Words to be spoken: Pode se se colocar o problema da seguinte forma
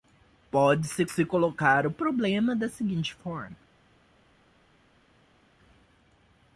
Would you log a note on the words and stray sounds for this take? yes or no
no